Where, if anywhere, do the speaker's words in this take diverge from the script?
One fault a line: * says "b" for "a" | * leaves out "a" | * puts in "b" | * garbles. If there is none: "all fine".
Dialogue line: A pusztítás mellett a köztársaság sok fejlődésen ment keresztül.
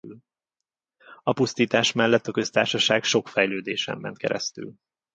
all fine